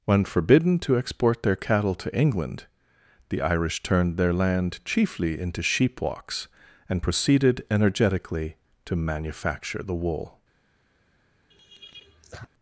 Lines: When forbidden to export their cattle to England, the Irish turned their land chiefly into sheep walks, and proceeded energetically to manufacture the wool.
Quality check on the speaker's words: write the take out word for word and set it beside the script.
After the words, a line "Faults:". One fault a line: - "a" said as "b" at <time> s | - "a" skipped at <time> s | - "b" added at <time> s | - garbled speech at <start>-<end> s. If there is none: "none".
When forbidden to export their cattle to England, the Irish turned their land chiefly into sheep walks, and proceeded energetically to manufacture the wool.
Faults:
none